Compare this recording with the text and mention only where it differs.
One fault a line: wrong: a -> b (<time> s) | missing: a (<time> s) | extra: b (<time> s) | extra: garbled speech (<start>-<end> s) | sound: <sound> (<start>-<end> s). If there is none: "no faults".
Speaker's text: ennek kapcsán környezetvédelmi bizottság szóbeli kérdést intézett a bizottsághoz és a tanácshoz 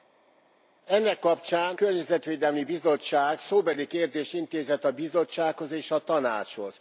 no faults